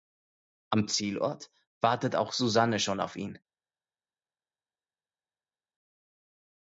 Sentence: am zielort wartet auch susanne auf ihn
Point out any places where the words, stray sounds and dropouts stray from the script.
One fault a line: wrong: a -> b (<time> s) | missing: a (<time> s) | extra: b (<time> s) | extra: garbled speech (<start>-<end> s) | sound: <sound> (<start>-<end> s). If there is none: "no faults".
extra: schon (2.8 s)